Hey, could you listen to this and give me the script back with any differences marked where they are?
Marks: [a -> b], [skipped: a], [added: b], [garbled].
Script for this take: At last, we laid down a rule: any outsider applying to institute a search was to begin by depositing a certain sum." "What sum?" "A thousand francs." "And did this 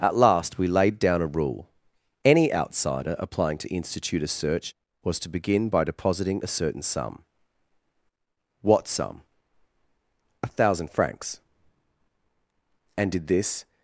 At last, we laid down a rule: any outsider applying to institute a search was to begin by depositing a certain sum." "What sum?" "A thousand francs." "And did this